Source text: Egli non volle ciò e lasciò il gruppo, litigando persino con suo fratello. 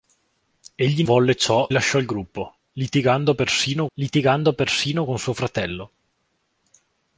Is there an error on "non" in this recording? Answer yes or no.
yes